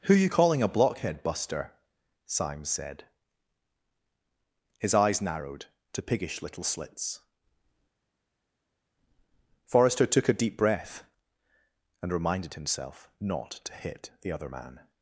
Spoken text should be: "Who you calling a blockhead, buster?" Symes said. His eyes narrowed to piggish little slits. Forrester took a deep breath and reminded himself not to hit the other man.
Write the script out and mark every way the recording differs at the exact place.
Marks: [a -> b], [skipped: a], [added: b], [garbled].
"Who you calling a blockhead, buster?" Symes said. His eyes narrowed to piggish little slits. Forrester took a deep breath and reminded himself not to hit the other man.